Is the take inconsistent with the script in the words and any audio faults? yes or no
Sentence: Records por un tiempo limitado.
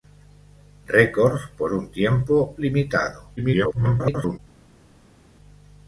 yes